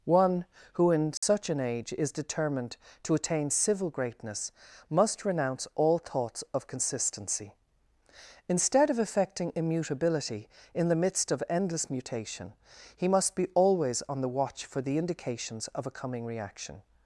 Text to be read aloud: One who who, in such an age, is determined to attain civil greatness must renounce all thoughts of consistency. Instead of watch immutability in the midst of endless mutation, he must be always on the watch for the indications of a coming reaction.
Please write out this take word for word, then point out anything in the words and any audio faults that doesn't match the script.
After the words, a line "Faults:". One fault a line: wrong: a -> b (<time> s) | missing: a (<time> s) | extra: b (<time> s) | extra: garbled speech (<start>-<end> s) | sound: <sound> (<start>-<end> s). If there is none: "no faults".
One who, in such an age, is determined to attain civil greatness must renounce all thoughts of consistency. Instead of affecting immutability in the midst of endless mutation, he must be always on the watch for the indications of a coming reaction.
Faults:
missing: who (0.9 s)
sound: dropout (1.2-1.2 s)
wrong: watch -> affecting (9.0 s)